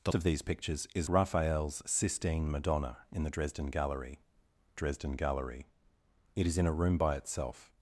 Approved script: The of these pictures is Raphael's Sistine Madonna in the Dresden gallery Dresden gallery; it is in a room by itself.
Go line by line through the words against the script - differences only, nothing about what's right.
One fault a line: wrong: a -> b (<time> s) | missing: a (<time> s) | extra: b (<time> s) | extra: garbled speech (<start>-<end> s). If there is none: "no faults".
no faults